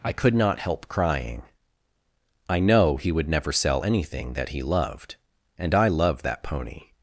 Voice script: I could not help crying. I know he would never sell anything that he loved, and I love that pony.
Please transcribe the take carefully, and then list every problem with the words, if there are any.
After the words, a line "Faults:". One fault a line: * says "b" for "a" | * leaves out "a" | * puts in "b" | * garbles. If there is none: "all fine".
I could not help crying. I know he would never sell anything that he loved, and I love that pony.
Faults:
all fine